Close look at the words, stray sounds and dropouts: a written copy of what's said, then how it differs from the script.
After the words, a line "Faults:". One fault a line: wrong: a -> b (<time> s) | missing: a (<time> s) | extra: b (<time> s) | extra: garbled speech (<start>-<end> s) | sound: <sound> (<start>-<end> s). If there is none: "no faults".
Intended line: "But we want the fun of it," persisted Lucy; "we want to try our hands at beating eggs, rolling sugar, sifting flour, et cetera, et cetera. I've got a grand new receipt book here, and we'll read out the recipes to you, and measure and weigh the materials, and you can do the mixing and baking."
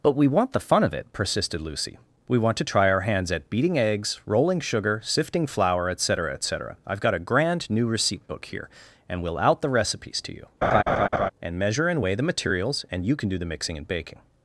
"But we want the fun of it," persisted Lucy; "we want to try our hands at beating eggs, rolling sugar, sifting flour, et cetera, et cetera. I've got a grand new receipt book here, and we'll out the recipes to you, and measure and weigh the materials, and you can do the mixing and baking."
Faults:
missing: read (9.4 s)
sound: laugh (10.6-11.3 s)